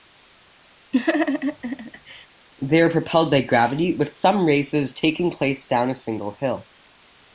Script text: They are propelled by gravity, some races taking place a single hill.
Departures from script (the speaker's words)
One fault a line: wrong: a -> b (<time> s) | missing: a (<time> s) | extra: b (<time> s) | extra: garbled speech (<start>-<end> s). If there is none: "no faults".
extra: with (4.0 s)
extra: down (5.7 s)